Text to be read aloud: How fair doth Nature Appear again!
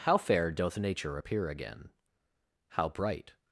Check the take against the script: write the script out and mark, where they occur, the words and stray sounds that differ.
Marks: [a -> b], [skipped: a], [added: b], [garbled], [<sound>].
How fair doth Nature Appear again! [added: How bright]